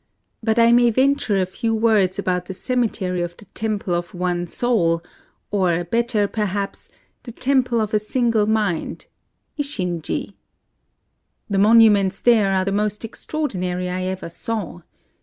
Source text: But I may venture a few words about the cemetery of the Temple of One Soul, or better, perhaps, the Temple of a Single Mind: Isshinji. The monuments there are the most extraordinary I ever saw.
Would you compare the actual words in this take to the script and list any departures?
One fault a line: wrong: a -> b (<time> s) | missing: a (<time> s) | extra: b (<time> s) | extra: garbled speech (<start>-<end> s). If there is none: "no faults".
no faults